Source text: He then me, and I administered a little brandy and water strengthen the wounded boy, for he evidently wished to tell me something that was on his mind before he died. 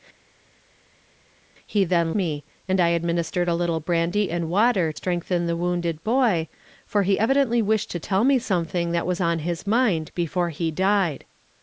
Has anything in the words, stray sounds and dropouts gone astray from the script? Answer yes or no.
no